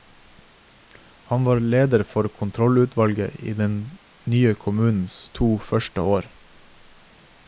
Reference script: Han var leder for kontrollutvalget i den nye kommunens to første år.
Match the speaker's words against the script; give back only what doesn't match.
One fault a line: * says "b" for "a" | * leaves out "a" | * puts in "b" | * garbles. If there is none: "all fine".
all fine